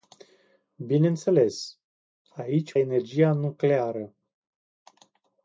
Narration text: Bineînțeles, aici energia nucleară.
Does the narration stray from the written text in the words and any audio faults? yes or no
no